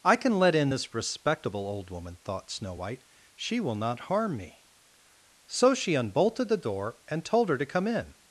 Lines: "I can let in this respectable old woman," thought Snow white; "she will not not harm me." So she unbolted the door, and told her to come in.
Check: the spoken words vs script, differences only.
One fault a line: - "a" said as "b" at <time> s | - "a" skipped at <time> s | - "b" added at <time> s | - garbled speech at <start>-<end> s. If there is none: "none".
- "not" skipped at 4.0 s